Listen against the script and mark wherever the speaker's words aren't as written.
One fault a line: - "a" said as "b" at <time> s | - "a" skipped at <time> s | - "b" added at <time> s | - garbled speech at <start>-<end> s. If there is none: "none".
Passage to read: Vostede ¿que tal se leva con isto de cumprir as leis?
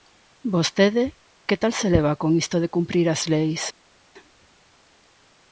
none